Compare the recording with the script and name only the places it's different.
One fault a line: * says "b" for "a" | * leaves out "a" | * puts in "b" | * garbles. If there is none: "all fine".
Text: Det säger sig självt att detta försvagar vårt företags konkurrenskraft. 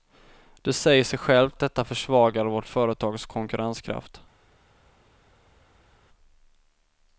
* leaves out "att"